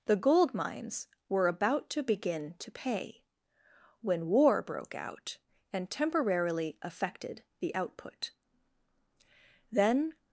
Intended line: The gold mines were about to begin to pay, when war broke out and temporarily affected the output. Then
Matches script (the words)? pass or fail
pass